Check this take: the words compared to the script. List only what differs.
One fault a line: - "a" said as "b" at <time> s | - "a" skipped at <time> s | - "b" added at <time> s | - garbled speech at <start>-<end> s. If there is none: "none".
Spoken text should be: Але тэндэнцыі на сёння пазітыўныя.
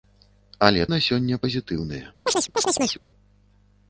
- "тэндэнцыі" skipped at 0.9 s